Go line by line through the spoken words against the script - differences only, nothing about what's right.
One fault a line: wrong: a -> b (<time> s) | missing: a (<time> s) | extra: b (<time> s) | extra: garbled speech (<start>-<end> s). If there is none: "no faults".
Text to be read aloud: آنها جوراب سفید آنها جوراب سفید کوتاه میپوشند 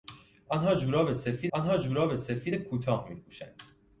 no faults